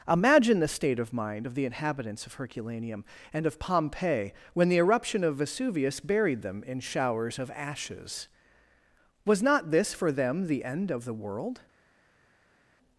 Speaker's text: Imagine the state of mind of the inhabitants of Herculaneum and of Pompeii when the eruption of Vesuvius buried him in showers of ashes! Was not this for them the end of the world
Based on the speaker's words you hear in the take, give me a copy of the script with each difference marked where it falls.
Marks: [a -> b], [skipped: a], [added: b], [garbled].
Imagine the state of mind of the inhabitants of Herculaneum and of Pompeii when the eruption of Vesuvius buried [him -> them] in showers of ashes! Was not this for them the end of the world